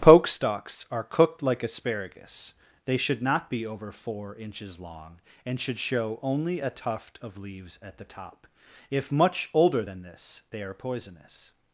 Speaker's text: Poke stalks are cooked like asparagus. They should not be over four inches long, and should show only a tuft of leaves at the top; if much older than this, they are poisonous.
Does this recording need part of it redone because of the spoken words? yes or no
no